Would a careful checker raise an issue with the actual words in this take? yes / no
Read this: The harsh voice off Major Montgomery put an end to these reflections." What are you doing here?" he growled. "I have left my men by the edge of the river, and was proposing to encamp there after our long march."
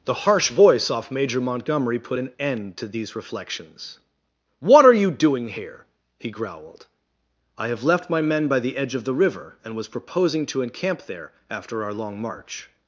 no